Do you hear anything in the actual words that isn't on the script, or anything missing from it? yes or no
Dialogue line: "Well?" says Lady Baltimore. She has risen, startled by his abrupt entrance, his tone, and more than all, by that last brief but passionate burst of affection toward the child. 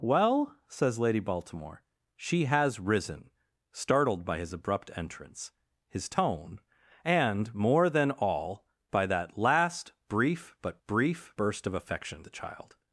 yes